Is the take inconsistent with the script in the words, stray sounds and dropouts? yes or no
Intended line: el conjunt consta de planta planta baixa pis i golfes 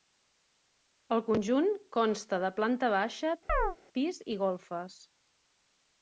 yes